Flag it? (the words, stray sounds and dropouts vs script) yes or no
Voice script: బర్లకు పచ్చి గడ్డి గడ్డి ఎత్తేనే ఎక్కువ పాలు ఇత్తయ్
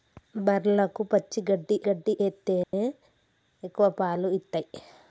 yes